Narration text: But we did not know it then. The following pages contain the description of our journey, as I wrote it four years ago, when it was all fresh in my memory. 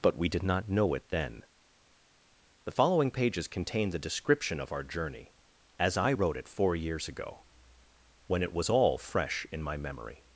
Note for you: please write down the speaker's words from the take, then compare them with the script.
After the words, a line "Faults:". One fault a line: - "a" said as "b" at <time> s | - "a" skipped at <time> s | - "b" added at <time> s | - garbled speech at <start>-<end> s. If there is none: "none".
But we did not know it then. The following pages contain the description of our journey, as I wrote it four years ago, when it was all fresh in my memory.
Faults:
none